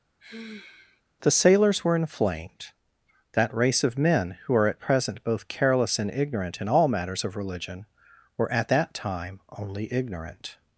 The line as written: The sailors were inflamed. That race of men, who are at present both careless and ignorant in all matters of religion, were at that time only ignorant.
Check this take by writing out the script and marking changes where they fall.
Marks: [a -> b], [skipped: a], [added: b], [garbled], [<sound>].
[sigh] The sailors were inflamed. That race of men, who are at present both careless and ignorant in all matters of religion, were at that time only ignorant.